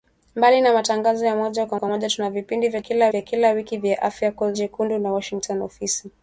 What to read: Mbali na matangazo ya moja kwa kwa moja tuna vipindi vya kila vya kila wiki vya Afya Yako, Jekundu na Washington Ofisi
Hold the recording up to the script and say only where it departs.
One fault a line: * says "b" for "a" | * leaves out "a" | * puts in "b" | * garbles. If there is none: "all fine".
all fine